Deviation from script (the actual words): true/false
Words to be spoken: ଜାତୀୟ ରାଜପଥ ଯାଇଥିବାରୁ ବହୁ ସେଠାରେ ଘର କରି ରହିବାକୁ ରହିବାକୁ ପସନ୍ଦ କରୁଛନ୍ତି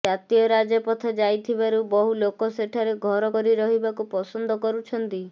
true